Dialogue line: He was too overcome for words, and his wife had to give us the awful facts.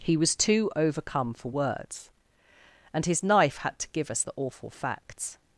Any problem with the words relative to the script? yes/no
yes